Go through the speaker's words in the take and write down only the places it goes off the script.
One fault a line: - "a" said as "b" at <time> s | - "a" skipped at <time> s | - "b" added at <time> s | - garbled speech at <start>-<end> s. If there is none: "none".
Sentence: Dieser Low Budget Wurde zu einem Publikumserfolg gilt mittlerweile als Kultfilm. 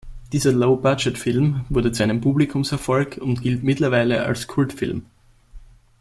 - "Film" added at 1.1 s
- "und" added at 3.2 s